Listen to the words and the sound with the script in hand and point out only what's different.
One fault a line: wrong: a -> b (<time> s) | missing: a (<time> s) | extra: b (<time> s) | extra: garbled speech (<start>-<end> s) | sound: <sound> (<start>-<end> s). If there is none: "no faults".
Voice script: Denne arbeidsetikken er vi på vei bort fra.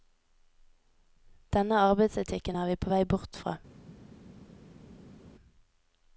no faults